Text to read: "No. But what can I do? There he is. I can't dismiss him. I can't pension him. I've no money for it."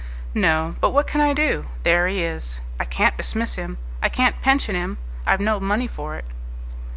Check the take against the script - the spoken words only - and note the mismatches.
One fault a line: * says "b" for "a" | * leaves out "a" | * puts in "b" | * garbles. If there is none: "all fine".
all fine